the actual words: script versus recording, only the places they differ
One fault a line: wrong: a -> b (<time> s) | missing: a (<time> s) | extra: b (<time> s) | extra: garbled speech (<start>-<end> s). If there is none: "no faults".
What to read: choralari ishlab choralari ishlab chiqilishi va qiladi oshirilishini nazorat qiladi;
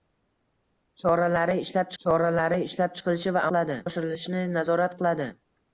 no faults